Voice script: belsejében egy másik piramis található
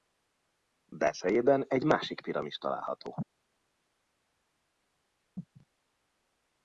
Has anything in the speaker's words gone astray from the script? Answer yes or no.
no